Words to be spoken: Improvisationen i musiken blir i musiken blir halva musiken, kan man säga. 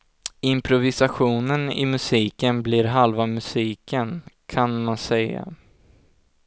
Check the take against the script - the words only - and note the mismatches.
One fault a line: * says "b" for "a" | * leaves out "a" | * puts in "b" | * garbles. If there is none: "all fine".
* leaves out "i musiken blir"